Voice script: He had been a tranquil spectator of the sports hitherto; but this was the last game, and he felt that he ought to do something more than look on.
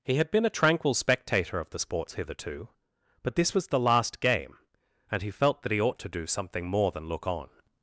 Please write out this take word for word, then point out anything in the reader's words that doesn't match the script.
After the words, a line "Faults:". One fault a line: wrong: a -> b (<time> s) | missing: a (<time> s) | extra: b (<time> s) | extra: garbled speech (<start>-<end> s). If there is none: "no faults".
He had been a tranquil spectator of the sports hitherto; but this was the last game, and he felt that he ought to do something more than look on.
Faults:
no faults